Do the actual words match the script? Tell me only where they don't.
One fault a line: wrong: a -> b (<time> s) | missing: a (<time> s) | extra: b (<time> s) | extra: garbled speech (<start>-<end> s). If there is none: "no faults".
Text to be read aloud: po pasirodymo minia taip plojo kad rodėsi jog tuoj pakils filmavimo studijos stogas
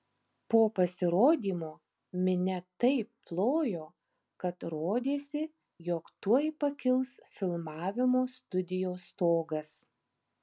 no faults